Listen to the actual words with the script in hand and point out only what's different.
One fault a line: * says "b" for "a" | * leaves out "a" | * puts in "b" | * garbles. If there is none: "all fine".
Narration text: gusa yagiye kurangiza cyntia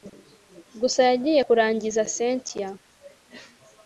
all fine